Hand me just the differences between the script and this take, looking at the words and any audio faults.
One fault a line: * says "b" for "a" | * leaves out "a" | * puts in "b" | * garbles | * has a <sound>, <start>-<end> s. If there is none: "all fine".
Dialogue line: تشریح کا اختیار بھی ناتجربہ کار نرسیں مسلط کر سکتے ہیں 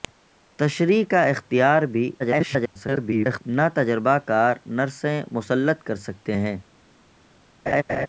* garbles
* has a laugh, 7.7-8.1 s